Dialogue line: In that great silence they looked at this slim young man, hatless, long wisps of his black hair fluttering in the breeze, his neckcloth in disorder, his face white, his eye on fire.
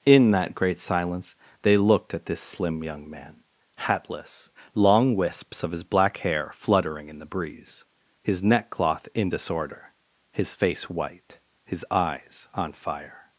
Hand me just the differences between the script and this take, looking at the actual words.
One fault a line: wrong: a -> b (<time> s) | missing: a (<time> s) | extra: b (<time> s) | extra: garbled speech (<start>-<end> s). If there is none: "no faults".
wrong: eye -> eyes (11.9 s)